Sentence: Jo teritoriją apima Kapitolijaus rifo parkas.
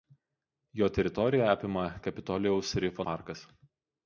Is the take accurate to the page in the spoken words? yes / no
yes